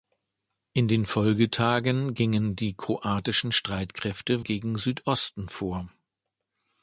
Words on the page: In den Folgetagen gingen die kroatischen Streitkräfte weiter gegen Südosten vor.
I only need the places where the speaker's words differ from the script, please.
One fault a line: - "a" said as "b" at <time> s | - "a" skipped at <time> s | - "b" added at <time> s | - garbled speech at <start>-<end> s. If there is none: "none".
- "weiter" skipped at 4.5 s